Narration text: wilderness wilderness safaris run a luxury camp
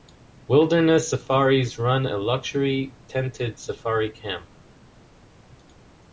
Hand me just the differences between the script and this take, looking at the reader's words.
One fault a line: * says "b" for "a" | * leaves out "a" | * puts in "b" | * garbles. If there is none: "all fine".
* leaves out "wilderness"
* puts in "tented safari"